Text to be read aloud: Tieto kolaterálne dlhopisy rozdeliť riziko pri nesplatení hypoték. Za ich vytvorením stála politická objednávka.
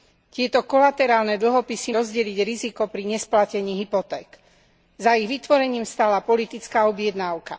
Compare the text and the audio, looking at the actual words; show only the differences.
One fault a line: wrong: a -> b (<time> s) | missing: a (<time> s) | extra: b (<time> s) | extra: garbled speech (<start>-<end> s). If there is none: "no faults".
no faults